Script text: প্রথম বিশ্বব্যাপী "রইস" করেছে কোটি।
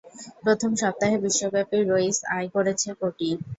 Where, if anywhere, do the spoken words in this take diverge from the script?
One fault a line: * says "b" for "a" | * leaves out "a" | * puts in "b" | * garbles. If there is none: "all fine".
* puts in "সপ্তাহে"
* puts in "আয়"